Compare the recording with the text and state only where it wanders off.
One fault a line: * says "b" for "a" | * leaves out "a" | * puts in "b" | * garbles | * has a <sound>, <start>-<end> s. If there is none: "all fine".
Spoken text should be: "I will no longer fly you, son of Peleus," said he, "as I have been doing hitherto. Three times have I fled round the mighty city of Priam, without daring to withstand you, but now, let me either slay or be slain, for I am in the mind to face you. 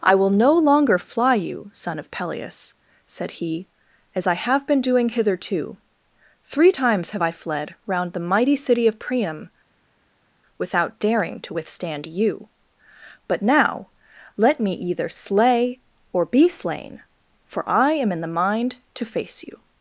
all fine